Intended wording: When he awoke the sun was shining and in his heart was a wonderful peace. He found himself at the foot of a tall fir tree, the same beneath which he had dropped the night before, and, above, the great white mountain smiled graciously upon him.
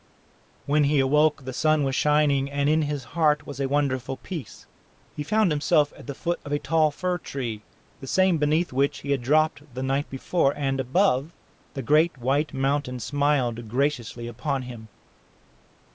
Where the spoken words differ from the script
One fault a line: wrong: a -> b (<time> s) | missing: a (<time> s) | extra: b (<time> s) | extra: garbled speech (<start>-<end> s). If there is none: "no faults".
no faults